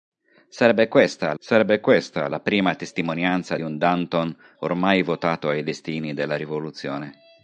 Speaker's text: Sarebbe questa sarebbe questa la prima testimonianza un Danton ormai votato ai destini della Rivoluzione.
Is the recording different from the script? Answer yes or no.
no